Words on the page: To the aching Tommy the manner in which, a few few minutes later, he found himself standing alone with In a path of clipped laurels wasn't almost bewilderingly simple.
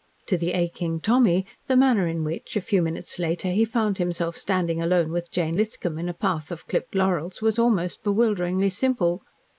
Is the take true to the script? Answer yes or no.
no